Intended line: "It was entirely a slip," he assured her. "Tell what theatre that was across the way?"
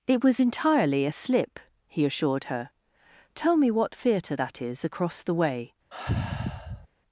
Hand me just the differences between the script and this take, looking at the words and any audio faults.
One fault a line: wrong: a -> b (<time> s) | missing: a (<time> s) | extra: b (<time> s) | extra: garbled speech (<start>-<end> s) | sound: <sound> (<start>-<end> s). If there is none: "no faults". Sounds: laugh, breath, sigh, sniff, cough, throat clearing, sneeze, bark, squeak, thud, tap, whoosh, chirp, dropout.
extra: me (3.6 s)
wrong: was -> is (4.6 s)
sound: sigh (5.9-6.9 s)